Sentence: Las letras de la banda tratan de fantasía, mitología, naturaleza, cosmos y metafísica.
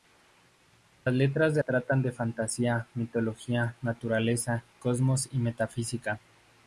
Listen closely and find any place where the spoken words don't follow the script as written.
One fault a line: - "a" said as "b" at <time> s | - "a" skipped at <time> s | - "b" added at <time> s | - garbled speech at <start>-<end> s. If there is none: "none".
- "la banda" skipped at 1.6 s